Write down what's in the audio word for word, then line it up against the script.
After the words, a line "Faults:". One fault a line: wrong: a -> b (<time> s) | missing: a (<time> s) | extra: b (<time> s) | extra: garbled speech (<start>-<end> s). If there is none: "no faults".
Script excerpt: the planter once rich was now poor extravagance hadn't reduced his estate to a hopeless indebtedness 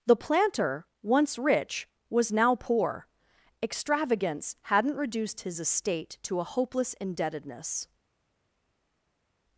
the planter once rich was now poor extravagance hadn't reduced his estate to a hopeless indebtedness
Faults:
no faults